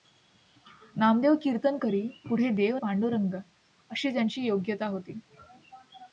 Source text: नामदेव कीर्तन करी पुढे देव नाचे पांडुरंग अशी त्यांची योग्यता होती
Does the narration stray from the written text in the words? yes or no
yes